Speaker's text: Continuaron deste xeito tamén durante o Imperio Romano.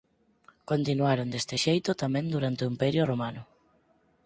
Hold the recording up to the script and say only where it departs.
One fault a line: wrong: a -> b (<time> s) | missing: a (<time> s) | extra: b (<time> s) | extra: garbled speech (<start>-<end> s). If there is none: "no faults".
no faults